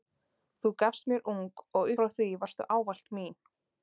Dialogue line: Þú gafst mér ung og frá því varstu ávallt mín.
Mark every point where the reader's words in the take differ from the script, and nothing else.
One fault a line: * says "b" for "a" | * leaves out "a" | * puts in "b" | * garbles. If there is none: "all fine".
all fine